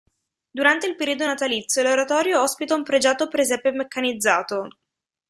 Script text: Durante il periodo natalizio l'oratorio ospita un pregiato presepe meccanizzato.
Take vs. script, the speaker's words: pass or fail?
pass